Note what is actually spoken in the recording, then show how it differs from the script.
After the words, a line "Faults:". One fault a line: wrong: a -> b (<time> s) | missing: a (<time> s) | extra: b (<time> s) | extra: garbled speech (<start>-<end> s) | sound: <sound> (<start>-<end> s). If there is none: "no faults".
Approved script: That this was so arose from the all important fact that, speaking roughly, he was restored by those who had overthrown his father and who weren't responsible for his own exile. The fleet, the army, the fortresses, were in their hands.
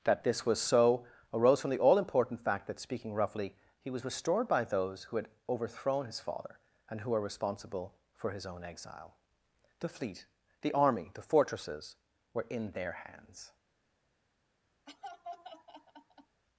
That this was so arose from the all important fact that, speaking roughly, he was restored by those who had overthrown his father and who were responsible for his own exile. The fleet, the army, the fortresses, were in their hands.
Faults:
wrong: weren't -> were (7.1 s)
sound: laugh (14.9-16.4 s)